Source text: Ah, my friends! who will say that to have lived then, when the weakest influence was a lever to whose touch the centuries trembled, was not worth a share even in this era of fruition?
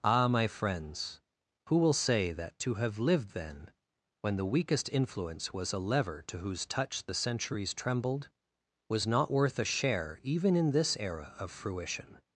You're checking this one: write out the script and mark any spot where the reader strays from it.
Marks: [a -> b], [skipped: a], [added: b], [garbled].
Ah, my friends! who will say that to have lived then, when the weakest influence was a lever to whose touch the centuries trembled, was not worth a share even in this era of fruition?